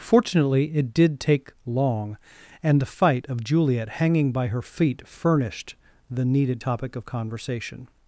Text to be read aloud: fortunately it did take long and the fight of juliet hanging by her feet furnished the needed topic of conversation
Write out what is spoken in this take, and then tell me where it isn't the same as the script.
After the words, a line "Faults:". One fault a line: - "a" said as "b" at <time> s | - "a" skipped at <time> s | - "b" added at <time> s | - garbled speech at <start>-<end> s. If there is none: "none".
fortunately it did take long and the fight of juliet hanging by her feet furnished the needed topic of conversation
Faults:
none